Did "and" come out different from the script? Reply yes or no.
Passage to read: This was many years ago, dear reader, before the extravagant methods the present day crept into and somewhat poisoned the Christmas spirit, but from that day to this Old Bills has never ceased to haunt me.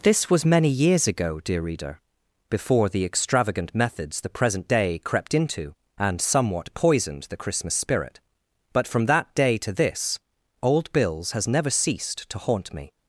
no